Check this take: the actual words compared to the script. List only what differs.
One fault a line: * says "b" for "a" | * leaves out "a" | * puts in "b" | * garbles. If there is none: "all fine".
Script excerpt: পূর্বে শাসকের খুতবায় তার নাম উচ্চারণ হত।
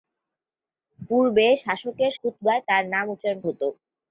all fine